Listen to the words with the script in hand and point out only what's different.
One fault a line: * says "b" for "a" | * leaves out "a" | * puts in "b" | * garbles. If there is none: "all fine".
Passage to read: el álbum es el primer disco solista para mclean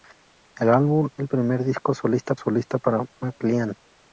* leaves out "es"
* puts in "solista"